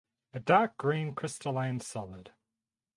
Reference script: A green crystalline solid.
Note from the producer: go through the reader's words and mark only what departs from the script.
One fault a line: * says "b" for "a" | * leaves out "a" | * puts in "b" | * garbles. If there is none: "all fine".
* puts in "dark"